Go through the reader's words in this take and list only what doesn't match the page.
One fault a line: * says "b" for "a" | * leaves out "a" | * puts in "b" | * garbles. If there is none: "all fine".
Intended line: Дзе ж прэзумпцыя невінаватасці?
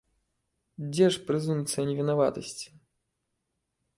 all fine